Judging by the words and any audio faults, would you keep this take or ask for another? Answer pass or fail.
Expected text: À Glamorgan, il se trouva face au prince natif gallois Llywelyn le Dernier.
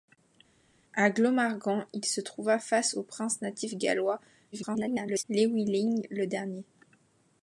fail